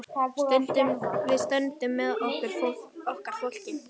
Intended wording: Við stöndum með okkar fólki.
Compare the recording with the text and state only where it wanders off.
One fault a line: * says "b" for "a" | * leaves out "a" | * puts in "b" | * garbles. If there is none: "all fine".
all fine